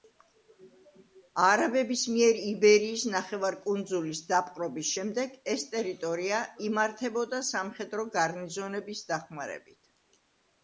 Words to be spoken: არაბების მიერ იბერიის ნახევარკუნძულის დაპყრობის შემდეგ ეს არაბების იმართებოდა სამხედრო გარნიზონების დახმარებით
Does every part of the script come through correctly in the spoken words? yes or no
no